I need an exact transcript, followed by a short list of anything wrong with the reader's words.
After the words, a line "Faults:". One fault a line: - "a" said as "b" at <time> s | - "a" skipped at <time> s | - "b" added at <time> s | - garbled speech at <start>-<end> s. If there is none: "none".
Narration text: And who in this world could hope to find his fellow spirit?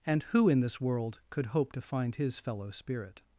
And who in this world could hope to find his fellow spirit?
Faults:
none